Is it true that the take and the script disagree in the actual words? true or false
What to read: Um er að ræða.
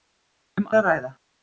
false